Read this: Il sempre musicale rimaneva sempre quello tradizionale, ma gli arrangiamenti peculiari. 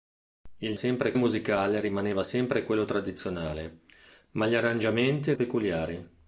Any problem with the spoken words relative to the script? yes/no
no